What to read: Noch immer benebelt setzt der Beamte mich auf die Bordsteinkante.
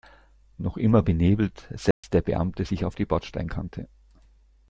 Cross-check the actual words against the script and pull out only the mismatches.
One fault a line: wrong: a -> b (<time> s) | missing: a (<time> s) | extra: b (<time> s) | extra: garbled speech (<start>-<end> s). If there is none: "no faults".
wrong: mich -> sich (2.6 s)